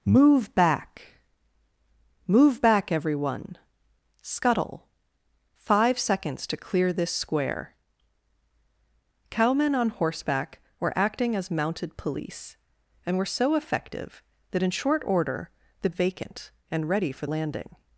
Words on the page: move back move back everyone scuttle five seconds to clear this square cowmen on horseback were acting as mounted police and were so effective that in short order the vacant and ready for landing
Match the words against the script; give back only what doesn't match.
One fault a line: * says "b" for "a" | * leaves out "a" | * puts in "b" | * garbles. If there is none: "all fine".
all fine